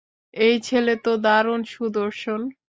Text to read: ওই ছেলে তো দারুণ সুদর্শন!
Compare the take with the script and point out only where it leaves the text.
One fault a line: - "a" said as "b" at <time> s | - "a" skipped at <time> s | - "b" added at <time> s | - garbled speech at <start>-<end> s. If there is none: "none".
- "ওই" said as "এই" at 0.3 s